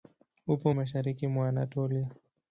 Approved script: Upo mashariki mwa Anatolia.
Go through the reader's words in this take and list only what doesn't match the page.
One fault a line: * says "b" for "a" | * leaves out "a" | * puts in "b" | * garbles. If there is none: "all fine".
all fine